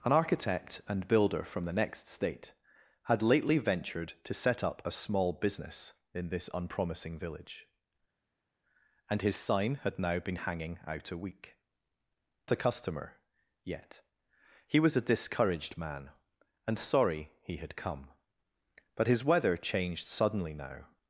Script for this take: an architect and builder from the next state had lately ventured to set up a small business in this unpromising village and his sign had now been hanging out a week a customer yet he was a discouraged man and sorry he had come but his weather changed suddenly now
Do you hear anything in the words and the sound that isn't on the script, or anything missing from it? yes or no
no